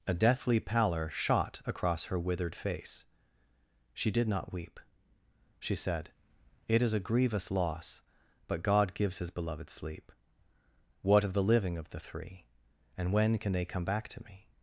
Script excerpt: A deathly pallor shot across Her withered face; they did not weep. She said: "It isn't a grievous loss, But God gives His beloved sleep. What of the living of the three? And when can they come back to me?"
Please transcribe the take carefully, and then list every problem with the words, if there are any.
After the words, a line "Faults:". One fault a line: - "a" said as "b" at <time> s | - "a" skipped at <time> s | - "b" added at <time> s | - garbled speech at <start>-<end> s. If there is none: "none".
A deathly pallor shot across Her withered face; she did not weep. She said: "It is a grievous loss, But God gives His beloved sleep. What of the living of the three? And when can they come back to me?"
Faults:
- "they" said as "she" at 3.9 s
- "isn't" said as "is" at 6.8 s